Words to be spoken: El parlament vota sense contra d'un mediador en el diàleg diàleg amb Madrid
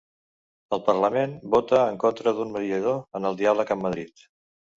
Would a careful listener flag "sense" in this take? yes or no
yes